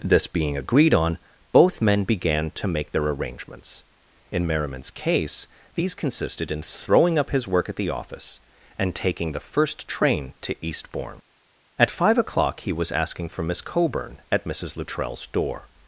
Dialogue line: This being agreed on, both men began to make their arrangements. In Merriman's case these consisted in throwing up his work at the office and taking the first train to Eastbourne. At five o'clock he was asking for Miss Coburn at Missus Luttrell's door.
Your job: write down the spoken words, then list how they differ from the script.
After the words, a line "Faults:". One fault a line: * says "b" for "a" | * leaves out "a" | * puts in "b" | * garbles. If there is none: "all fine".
This being agreed on, both men began to make their arrangements. In Merriman's case these consisted in throwing up his work at the office and taking the first train to Eastbourne. At five o'clock he was asking for Miss Coburn at Missus Luttrell's door.
Faults:
all fine